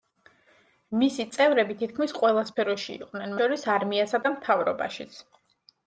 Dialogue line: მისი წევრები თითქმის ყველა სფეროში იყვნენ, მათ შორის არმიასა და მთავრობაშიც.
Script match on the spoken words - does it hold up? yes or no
no